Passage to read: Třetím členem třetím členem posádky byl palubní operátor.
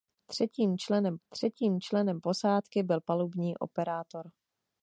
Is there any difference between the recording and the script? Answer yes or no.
no